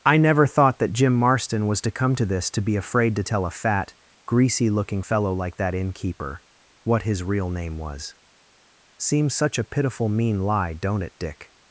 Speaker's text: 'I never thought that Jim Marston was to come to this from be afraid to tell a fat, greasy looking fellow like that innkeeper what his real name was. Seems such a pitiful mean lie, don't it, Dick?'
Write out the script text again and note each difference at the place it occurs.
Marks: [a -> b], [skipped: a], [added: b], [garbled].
'I never thought that Jim Marston was to come to this [from -> to] be afraid to tell a fat, greasy looking fellow like that innkeeper what his real name was. Seems such a pitiful mean lie, don't it, Dick?'